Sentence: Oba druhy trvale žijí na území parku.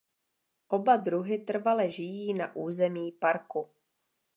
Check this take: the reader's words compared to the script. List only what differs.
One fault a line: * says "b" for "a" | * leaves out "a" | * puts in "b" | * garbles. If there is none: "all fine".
all fine